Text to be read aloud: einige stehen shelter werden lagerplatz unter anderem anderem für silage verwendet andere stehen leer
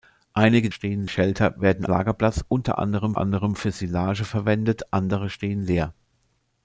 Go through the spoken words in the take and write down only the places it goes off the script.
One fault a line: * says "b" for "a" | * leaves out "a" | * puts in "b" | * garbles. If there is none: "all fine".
all fine